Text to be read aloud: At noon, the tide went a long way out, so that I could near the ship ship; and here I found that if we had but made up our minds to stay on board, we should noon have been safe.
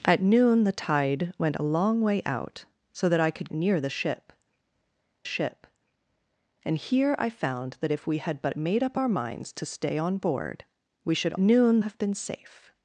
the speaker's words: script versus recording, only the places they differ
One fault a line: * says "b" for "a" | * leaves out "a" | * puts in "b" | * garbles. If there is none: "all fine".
all fine